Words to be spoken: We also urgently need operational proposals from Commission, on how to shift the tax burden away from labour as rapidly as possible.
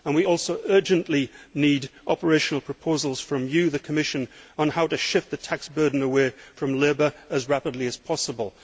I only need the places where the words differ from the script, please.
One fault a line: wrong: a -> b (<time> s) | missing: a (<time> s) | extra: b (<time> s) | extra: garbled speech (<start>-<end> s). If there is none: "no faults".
extra: you the (3.5 s)